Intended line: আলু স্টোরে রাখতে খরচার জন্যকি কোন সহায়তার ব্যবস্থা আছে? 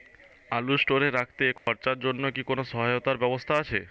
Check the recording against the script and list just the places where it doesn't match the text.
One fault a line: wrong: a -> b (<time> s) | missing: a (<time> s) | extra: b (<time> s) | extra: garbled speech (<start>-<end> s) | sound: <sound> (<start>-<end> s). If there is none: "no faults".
sound: dropout (1.6-1.7 s)